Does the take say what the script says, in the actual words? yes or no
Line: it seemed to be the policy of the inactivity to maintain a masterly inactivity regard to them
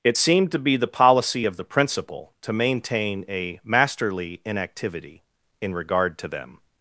no